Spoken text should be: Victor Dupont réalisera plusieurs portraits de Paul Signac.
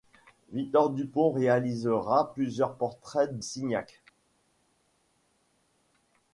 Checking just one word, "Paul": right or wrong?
wrong